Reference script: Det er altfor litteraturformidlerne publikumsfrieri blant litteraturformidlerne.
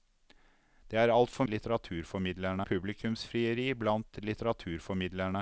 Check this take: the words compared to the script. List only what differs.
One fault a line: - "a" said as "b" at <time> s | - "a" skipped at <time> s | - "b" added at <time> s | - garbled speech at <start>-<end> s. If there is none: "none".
none